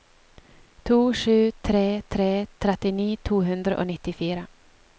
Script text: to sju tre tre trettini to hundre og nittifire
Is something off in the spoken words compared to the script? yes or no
no